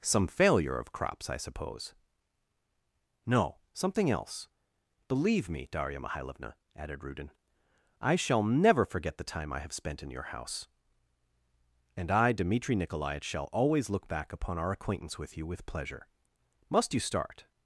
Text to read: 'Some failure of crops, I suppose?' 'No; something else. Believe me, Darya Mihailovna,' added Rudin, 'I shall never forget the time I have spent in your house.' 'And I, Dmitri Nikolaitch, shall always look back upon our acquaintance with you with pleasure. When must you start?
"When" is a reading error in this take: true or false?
true